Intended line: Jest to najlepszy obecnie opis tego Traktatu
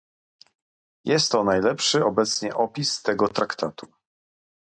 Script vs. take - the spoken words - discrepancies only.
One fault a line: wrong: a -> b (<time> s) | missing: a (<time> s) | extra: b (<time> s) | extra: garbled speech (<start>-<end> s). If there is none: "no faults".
no faults